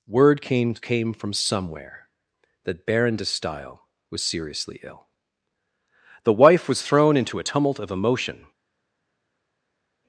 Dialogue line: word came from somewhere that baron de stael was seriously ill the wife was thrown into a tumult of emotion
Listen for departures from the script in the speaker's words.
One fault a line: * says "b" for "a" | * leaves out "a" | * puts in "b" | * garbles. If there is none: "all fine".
* puts in "came"